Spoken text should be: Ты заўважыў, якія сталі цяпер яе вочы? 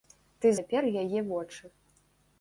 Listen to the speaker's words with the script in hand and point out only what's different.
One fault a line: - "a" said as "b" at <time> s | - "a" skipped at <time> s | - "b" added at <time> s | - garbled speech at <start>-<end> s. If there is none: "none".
- "заўважыў якія сталі" skipped at 0.5 s